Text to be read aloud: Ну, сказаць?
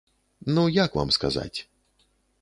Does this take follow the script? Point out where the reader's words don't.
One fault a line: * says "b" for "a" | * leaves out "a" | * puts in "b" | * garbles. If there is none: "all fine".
* puts in "як вам"